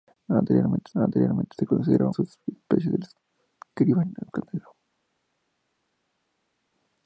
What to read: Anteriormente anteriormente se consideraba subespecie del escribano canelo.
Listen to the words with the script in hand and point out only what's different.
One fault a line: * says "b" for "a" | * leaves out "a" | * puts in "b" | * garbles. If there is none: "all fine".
all fine